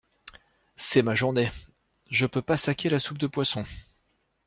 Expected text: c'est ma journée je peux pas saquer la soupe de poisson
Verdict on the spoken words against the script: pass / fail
pass